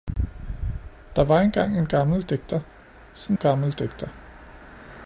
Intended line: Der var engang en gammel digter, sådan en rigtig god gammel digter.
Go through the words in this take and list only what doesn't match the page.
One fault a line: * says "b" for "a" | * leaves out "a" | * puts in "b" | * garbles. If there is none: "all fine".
* leaves out "en rigtig god"